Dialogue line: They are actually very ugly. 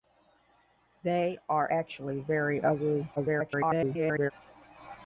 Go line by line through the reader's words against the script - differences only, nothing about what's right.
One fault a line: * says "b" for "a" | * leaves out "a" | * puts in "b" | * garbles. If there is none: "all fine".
* garbles